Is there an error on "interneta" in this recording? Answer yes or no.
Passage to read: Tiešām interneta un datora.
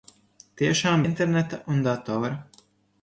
no